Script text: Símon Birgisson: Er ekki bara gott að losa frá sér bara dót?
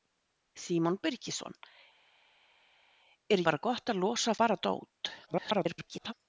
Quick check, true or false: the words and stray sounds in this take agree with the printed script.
false